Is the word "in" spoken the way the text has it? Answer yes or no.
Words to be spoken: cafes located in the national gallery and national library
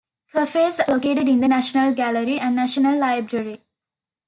yes